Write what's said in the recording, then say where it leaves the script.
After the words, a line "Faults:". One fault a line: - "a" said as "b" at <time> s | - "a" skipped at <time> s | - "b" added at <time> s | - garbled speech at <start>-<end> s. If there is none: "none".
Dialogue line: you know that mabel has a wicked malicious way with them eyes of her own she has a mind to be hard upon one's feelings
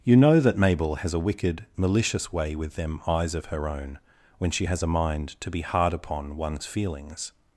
you know that mabel has a wicked malicious way with them eyes of her own when she has a mind to be hard upon one's feelings
Faults:
- "when" added at 4.4 s